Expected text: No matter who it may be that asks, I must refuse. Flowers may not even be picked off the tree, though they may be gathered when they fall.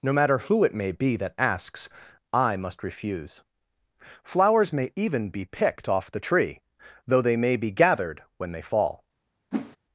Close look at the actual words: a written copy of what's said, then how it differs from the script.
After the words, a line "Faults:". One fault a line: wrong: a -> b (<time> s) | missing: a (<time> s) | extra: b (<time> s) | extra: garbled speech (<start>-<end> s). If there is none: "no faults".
No matter who it may be that asks, I must refuse. Flowers may even be picked off the tree, though they may be gathered when they fall.
Faults:
missing: not (4.9 s)